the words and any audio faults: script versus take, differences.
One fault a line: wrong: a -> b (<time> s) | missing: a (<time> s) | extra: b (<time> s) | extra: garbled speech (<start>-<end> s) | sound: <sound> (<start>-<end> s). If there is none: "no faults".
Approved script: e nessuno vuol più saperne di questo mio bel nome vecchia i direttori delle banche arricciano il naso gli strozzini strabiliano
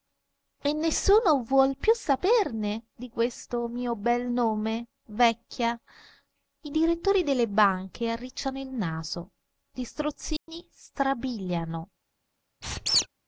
sound: dropout (10.4-10.5 s)
sound: squeak (12.6-13.1 s)